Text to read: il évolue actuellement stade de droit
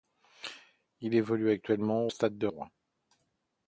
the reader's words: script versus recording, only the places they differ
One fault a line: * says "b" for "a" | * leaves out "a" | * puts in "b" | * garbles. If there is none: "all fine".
all fine